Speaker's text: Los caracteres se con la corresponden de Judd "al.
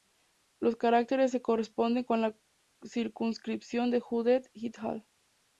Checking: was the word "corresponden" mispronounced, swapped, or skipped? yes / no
yes